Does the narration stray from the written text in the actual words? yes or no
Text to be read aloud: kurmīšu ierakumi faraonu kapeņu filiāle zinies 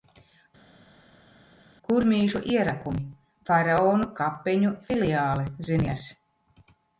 no